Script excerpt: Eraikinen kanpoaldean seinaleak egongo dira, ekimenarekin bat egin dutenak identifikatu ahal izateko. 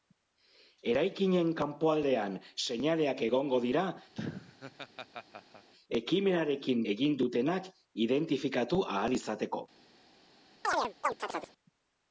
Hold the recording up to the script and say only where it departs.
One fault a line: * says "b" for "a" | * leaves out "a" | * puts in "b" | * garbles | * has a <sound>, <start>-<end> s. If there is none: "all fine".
* has a laugh, 4.1-5.7 s
* leaves out "bat"
* has a chirp, 10.6-11.5 s